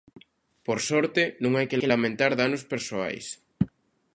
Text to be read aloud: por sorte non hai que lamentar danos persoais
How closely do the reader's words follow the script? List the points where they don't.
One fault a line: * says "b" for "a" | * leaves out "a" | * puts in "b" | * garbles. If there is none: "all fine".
* puts in "que"